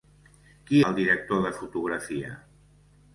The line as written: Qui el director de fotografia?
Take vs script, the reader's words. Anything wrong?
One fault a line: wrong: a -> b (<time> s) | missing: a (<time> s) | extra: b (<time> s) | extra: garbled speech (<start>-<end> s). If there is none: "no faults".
no faults